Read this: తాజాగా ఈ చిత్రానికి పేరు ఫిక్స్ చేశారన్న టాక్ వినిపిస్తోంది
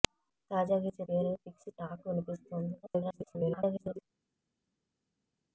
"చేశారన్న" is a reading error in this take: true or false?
true